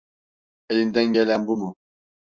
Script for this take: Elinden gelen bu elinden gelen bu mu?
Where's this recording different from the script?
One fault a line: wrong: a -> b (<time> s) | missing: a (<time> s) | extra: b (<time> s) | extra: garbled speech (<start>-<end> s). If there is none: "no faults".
missing: elinden gelen bu (1.6 s)